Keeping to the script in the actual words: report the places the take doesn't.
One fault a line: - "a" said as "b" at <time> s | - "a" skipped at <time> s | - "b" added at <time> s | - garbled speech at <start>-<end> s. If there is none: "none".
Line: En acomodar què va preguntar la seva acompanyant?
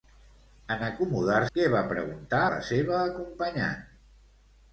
none